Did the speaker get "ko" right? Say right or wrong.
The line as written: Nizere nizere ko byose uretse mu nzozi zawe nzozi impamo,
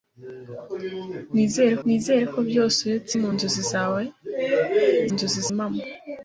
right